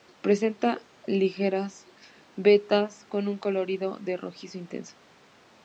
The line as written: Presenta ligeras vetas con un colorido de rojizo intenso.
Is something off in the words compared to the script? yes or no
no